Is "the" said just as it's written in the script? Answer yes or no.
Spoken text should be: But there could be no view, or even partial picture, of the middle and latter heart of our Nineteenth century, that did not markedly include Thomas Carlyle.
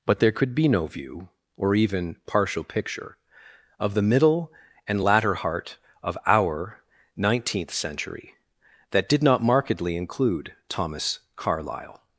yes